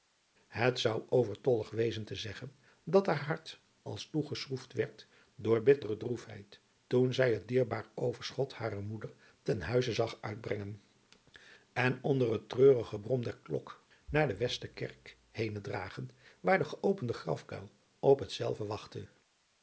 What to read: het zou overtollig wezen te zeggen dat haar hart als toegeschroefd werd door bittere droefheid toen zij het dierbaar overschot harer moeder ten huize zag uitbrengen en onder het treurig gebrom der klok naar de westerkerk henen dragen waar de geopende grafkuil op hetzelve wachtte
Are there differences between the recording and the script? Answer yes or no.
no